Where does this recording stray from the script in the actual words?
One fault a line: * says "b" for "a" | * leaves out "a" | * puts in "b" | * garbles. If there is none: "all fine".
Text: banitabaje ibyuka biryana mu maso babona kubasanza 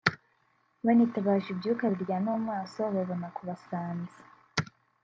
all fine